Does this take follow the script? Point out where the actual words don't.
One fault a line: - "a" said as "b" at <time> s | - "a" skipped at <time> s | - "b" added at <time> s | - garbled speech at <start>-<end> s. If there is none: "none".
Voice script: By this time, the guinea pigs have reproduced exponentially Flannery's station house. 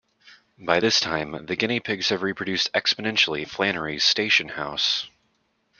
none